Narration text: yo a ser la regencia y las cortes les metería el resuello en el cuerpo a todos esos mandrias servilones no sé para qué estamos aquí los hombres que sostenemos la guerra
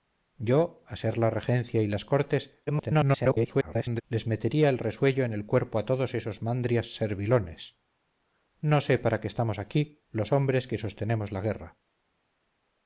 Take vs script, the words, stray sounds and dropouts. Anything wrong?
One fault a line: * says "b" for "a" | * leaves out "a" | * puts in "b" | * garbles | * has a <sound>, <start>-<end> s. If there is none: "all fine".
* garbles